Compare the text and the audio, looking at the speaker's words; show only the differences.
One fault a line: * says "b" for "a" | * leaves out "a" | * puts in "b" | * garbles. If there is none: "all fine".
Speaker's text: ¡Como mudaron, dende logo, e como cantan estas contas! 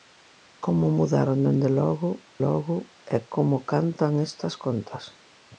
* puts in "logo"